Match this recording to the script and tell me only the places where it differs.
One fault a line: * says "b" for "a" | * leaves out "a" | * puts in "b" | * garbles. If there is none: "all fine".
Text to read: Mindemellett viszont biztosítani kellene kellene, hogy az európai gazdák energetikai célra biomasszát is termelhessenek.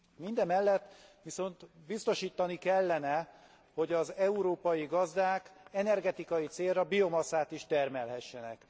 * leaves out "kellene"